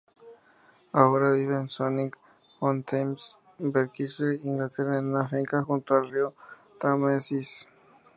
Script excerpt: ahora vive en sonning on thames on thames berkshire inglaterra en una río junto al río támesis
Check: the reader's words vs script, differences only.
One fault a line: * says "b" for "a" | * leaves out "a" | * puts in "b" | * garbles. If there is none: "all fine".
* leaves out "on thames"
* says "finca" for "río"